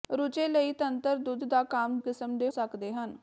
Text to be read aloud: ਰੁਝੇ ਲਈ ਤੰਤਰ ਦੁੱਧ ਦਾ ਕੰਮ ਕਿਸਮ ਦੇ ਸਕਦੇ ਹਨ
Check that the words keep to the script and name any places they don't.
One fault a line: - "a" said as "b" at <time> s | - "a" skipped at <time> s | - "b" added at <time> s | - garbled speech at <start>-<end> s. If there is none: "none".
none